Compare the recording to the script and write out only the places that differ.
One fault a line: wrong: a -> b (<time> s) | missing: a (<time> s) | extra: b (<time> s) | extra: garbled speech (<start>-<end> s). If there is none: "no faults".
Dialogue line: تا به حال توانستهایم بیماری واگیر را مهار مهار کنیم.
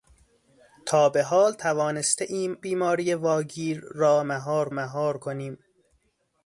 no faults